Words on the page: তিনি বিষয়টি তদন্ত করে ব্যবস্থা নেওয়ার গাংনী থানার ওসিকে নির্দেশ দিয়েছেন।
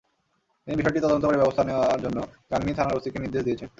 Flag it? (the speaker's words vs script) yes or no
yes